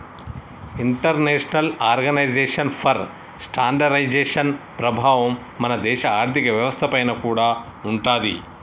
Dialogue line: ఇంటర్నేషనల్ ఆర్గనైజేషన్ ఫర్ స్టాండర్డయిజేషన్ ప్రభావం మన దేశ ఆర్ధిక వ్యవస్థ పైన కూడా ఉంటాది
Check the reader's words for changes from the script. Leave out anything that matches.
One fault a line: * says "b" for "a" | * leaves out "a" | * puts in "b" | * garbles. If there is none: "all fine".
all fine